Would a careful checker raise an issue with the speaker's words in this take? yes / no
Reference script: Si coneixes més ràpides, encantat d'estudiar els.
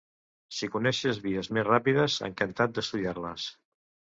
yes